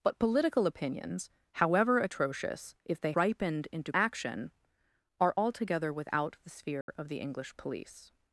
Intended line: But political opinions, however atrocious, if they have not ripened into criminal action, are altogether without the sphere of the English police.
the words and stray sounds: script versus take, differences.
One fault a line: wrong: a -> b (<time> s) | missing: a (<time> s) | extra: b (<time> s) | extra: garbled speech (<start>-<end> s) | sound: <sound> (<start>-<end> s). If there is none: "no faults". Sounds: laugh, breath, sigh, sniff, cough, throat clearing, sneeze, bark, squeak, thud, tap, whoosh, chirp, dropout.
missing: have not (3.1 s)
missing: criminal (3.9 s)
sound: dropout (6.8-6.9 s)